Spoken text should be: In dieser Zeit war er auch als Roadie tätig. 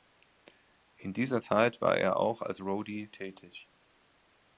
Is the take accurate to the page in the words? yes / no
yes